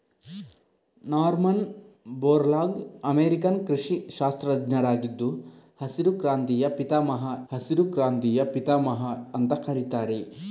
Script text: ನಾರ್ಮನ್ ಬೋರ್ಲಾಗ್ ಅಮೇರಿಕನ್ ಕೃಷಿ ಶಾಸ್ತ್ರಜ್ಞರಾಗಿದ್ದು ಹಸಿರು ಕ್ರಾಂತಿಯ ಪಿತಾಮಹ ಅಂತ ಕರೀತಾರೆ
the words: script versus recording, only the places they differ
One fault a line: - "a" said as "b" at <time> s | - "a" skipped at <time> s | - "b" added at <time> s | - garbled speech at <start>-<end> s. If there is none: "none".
- "ಹಸಿರು ಕ್ರಾಂತಿಯ ಪಿತಾಮಹ" added at 7.5 s